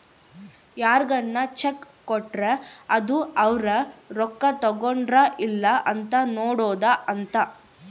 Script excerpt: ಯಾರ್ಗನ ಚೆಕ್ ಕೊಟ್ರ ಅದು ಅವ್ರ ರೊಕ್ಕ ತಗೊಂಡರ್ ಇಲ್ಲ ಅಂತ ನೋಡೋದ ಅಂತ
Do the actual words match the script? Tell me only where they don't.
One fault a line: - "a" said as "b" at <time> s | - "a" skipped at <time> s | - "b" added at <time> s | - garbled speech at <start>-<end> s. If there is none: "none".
none